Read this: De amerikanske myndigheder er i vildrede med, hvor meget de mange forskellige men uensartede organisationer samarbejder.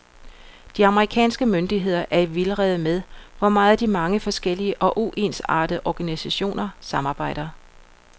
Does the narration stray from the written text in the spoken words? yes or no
yes